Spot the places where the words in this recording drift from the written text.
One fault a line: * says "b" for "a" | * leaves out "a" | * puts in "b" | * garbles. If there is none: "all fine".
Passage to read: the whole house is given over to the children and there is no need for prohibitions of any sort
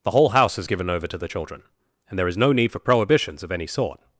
all fine